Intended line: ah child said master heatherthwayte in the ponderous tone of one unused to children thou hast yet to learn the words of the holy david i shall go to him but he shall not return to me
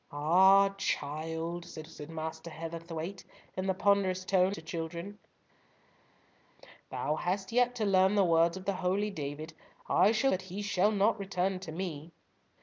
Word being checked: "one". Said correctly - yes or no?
no